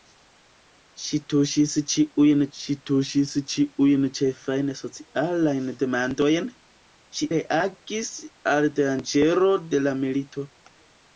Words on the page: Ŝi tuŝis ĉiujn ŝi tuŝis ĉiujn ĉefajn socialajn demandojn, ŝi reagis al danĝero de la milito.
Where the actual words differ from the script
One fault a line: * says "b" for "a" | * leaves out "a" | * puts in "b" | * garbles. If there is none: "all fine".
all fine